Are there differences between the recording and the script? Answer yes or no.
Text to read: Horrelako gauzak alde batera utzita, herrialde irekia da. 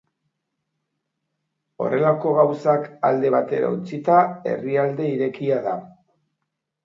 no